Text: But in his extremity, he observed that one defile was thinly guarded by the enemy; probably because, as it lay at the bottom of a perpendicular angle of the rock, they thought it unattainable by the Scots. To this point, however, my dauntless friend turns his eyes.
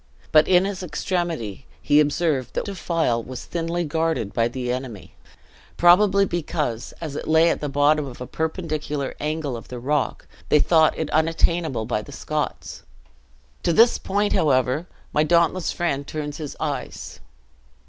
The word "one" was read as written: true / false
false